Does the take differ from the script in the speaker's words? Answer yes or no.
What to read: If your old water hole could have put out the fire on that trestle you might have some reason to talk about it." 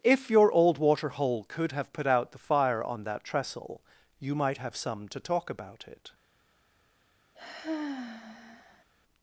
yes